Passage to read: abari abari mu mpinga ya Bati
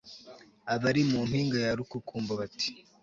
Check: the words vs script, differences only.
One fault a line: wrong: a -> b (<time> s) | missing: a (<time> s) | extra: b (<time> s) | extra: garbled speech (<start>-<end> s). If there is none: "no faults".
missing: abari (1.0 s)
extra: Rukukumbo (1.8 s)